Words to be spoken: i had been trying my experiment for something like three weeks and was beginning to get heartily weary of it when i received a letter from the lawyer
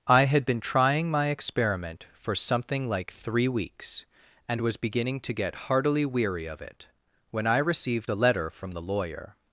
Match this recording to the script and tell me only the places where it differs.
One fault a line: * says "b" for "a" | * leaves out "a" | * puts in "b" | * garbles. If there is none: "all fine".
all fine